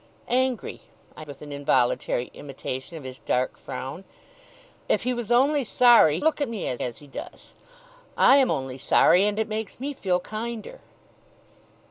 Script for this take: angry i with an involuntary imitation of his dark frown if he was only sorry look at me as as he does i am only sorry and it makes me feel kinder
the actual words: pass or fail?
pass